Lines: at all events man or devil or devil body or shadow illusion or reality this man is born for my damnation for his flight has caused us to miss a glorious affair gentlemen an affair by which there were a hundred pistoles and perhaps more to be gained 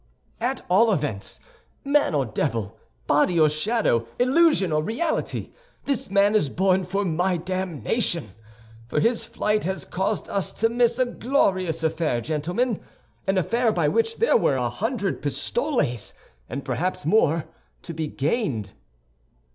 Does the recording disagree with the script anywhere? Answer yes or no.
yes